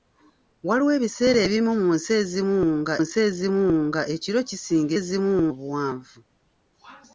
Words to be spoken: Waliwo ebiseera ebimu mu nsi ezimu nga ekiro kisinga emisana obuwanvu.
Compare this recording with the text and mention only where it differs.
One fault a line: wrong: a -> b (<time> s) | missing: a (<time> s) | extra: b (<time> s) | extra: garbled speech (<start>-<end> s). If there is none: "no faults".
extra: nsi ezimu nga (3.0 s)
wrong: emisana -> ezimu (5.0 s)